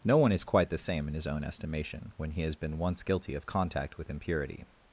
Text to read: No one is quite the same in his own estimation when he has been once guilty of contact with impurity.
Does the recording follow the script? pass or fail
pass